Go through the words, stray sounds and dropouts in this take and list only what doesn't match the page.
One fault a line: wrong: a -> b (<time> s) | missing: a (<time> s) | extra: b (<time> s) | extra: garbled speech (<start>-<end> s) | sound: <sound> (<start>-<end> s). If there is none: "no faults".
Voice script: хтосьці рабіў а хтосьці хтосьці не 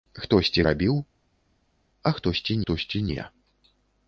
no faults